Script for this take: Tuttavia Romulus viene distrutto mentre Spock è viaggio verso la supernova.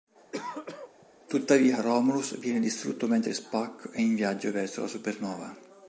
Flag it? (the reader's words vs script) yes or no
yes